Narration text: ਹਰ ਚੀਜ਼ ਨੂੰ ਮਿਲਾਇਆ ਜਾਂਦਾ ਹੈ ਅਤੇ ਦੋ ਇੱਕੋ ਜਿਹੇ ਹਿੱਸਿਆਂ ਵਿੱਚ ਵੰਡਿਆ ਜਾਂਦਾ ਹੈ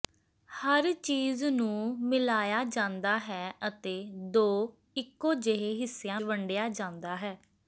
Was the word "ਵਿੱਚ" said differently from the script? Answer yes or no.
yes